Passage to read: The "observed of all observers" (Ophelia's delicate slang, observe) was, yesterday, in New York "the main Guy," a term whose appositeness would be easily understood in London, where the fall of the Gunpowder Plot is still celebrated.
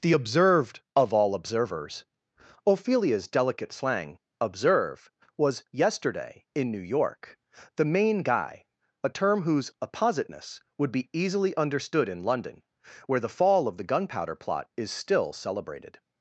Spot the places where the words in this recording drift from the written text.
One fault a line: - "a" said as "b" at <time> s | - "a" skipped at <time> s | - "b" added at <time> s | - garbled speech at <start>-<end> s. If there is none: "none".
none